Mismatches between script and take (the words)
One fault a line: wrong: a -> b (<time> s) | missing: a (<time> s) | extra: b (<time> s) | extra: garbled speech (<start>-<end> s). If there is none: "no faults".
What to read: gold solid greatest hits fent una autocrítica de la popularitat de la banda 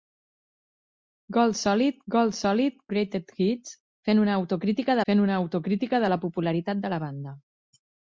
extra: gold solid (2.2 s)
extra: fent una autocrítica (5.1 s)